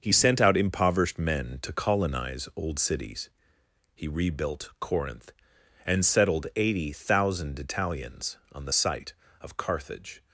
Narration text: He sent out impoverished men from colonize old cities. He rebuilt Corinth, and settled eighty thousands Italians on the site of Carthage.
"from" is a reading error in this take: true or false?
true